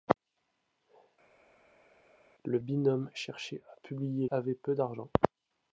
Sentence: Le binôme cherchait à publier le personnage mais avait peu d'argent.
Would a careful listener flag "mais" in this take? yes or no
yes